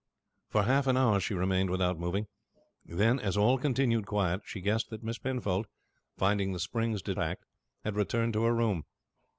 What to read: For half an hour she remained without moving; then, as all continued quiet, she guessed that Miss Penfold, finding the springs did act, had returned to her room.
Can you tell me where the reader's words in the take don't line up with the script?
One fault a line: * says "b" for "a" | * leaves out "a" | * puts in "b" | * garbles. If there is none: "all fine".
all fine